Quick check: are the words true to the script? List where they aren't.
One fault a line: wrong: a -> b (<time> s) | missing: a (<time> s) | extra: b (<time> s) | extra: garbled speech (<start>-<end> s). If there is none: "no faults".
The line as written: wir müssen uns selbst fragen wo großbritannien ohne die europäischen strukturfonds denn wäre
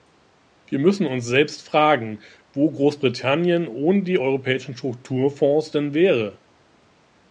no faults